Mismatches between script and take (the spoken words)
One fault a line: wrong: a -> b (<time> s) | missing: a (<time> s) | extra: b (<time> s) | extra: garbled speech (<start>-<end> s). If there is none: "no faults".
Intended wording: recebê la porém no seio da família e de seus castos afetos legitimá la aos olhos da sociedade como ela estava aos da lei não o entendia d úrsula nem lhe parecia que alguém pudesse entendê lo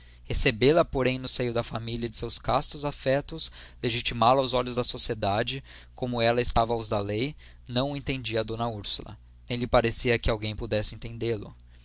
no faults